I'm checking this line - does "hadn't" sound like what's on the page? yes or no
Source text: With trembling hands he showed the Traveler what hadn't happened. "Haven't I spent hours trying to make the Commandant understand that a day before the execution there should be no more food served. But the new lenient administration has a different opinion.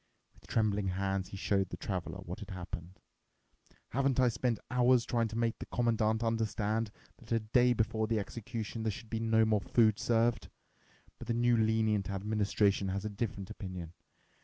no